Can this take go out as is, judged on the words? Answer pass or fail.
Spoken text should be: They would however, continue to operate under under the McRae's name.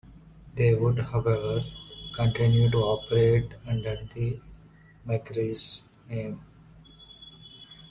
fail